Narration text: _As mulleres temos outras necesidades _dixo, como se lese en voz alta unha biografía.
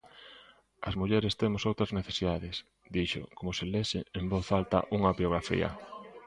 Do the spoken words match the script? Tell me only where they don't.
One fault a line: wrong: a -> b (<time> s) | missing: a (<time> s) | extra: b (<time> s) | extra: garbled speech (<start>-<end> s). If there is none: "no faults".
no faults